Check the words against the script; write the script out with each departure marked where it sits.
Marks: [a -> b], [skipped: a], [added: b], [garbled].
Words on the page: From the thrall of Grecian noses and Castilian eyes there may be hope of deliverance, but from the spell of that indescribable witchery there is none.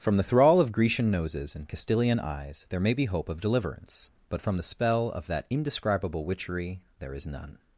From the thrall of Grecian noses and Castilian eyes there may be hope of deliverance, but from the spell of that indescribable witchery there is none.